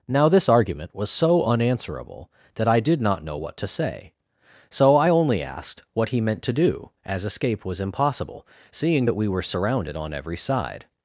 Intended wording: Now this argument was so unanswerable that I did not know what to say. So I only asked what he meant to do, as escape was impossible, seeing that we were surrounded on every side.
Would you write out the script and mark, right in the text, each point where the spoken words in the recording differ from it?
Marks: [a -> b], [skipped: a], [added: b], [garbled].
Now this argument was so unanswerable that I did not know what to say. So I only asked what he meant to do, as escape was impossible, seeing that we were surrounded on every side.